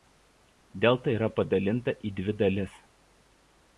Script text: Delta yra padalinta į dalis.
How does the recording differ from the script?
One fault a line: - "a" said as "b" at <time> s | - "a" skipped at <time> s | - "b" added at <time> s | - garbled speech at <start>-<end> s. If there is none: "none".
- "dvi" added at 2.2 s